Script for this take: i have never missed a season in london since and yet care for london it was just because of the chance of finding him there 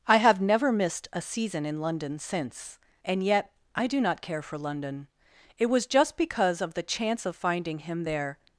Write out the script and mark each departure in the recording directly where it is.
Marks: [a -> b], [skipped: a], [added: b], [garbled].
i have never missed a season in london since and yet [added: i do not] care for london it was just because of the chance of finding him there